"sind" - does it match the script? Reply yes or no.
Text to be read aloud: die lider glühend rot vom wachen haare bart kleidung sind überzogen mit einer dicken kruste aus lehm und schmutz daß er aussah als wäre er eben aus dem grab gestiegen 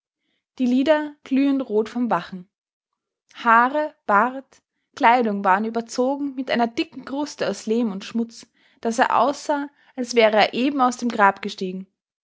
no